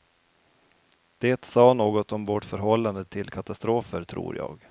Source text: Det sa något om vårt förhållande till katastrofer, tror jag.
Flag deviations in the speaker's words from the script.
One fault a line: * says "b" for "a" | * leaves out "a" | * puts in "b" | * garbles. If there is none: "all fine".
all fine